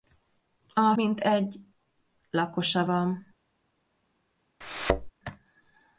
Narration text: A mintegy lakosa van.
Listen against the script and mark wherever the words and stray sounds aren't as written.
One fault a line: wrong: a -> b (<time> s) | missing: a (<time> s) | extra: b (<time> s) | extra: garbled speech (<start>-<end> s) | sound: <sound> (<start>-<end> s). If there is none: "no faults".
sound: thud (4.6-5.1 s)